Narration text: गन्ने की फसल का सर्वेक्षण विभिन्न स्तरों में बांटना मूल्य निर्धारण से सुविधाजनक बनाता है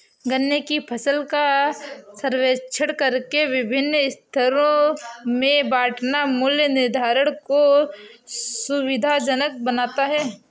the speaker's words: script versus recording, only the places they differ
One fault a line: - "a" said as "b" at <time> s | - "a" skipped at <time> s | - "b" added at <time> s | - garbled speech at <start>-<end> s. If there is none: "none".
- "करके" added at 2.9 s
- "से" said as "को" at 7.5 s